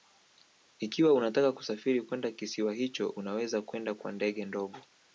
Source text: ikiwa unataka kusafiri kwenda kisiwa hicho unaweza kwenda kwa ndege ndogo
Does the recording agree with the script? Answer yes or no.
yes